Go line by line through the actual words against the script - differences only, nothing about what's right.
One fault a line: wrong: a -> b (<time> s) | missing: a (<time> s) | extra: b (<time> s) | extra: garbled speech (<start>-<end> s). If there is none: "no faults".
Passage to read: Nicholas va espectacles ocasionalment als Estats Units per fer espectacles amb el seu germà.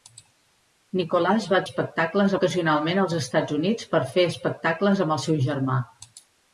no faults